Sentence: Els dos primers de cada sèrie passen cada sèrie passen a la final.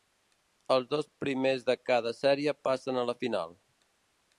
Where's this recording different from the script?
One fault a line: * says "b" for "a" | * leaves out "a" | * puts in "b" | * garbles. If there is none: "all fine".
* leaves out "cada sèrie passen"